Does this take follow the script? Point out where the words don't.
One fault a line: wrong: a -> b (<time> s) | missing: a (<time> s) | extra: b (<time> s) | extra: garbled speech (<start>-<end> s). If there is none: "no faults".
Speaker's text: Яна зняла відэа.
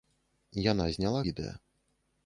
no faults